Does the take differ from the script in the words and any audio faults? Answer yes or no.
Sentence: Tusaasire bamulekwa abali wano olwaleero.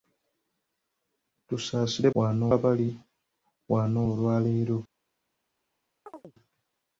yes